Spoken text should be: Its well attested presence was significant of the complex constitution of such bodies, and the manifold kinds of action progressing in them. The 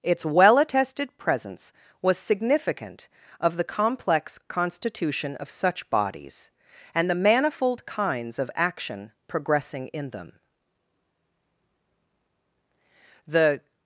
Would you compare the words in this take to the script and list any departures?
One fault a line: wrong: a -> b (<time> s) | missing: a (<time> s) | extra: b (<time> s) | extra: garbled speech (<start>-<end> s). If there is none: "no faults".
no faults